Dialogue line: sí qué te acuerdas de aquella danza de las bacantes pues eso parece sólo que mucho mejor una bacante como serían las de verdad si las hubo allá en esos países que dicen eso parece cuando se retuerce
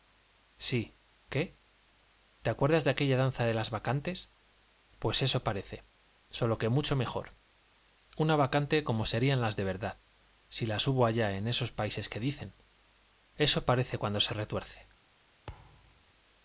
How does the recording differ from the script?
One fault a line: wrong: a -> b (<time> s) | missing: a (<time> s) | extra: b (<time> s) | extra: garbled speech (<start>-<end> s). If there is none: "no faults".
no faults